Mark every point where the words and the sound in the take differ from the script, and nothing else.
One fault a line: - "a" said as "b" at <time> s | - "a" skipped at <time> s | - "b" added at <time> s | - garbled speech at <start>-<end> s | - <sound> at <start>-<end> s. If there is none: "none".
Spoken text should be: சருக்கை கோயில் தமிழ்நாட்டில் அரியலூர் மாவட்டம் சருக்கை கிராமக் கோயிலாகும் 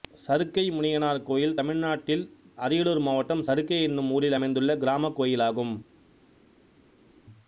- "முனியனார்" added at 0.7 s
- "என்னும் ஊரில் அமைந்துள்ள" added at 3.8 s